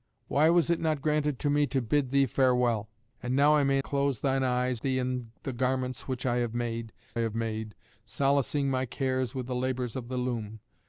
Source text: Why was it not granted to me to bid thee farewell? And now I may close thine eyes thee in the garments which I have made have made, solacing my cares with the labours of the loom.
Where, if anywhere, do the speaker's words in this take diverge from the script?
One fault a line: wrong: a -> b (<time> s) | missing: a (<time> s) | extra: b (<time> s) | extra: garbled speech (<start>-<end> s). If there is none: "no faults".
no faults